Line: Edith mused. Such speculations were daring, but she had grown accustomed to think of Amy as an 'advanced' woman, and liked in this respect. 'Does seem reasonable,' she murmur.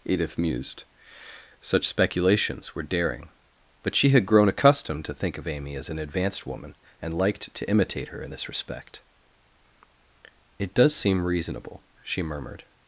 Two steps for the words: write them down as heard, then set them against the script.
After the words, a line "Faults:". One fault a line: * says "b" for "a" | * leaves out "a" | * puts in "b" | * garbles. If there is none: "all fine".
Edith mused. Such speculations were daring, but she had grown accustomed to think of Amy as an 'advanced' woman, and liked to imitate her in this respect. 'It does seem reasonable,' she murmured.
Faults:
* puts in "to imitate her"
* puts in "It"
* says "murmured" for "murmur"